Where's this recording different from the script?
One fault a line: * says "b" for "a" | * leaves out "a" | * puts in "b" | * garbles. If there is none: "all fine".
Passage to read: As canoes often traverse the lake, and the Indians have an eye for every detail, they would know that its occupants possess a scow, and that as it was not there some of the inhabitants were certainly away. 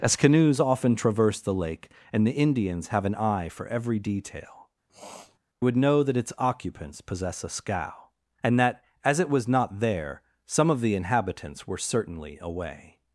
* leaves out "they"